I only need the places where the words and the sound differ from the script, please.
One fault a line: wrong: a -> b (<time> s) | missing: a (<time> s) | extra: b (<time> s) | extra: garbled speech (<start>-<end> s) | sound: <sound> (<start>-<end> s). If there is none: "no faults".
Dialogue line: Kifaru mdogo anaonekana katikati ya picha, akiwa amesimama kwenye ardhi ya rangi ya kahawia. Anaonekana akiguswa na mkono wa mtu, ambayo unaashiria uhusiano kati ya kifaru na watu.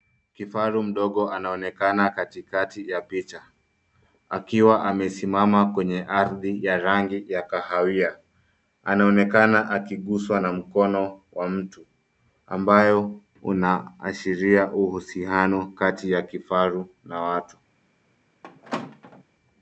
sound: squeak (18.4-19.2 s)